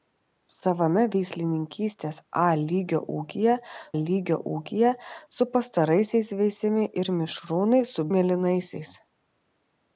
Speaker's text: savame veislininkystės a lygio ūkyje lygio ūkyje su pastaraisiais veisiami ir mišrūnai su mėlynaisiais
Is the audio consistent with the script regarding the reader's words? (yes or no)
yes